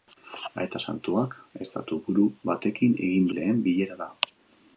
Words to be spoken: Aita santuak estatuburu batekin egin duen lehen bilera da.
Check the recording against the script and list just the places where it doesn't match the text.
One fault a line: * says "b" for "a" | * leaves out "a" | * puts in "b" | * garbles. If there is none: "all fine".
* leaves out "duen"